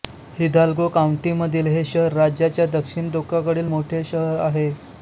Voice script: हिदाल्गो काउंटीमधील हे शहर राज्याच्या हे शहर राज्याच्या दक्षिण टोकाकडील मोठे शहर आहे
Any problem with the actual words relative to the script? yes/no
yes